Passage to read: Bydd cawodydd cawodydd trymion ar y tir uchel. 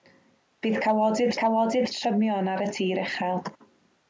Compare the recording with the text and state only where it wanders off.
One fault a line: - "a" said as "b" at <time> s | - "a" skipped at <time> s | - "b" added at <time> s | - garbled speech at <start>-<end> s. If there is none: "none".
none